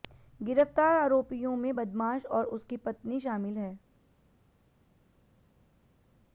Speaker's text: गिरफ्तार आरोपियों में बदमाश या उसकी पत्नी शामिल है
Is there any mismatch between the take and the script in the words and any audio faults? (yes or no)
yes